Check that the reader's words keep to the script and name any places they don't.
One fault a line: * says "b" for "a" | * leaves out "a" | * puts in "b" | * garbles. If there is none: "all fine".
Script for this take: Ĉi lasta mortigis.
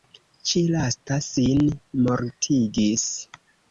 * puts in "sin"